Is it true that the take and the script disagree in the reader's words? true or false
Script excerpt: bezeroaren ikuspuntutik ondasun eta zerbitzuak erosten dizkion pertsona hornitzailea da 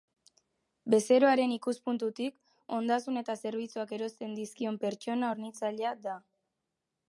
false